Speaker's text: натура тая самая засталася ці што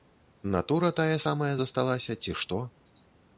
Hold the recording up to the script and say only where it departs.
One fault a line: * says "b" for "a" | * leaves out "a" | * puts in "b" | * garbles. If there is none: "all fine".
all fine